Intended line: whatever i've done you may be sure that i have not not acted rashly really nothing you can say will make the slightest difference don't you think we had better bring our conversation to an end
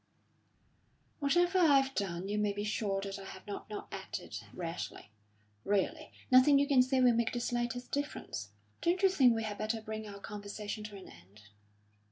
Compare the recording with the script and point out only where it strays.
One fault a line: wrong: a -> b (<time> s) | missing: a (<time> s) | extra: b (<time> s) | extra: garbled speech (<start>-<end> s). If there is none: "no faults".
no faults